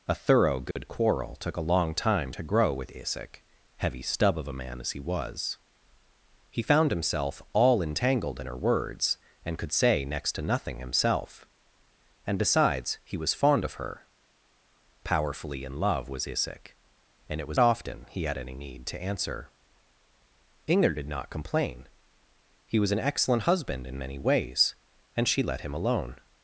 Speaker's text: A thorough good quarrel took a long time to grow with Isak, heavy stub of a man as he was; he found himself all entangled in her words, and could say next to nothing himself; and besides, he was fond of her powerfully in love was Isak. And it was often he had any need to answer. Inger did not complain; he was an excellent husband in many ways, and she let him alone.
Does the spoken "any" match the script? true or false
true